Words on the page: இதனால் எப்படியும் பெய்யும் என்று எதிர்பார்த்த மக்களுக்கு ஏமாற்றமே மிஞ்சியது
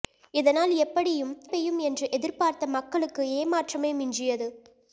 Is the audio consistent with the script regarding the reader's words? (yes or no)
yes